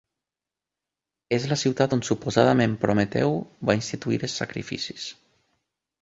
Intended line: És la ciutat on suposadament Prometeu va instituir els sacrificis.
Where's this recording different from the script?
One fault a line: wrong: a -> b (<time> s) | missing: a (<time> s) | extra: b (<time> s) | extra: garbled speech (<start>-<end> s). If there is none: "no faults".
no faults